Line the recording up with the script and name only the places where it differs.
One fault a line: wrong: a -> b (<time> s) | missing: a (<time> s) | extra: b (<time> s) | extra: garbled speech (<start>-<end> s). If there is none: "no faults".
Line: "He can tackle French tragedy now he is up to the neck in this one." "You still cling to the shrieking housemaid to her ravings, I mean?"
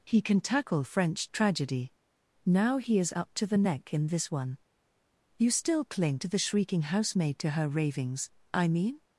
no faults